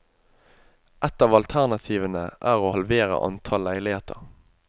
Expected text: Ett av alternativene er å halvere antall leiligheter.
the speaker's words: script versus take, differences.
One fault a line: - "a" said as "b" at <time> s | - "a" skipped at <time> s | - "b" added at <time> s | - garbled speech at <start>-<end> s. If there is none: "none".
none